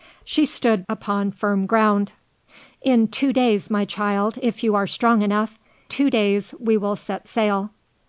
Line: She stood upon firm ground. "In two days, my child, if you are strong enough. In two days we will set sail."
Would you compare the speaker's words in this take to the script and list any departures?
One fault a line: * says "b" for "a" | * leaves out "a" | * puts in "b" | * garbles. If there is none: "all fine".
* leaves out "In"